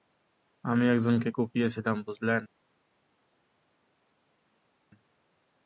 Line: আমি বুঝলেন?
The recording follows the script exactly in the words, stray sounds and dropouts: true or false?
false